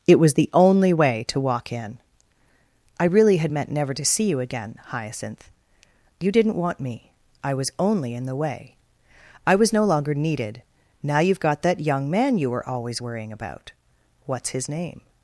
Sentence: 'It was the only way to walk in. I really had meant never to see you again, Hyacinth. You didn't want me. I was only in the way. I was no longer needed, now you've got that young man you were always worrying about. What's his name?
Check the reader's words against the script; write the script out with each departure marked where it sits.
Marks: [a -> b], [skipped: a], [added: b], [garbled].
'It was the only way to walk in. I really had meant never to see you again, Hyacinth. You didn't want me. I was only in the way. I was no longer needed, now you've got that young man you were always worrying about. What's his name?